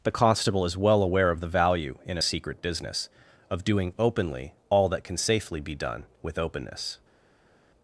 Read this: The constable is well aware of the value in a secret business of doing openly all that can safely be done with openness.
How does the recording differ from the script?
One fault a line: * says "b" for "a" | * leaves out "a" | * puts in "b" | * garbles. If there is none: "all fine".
all fine